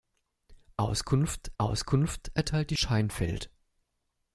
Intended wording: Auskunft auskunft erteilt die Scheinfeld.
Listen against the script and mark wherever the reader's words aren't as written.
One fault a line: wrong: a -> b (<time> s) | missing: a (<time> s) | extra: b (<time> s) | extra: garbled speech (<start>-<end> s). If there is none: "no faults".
no faults